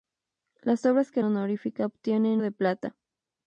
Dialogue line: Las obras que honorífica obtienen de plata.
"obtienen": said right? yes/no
yes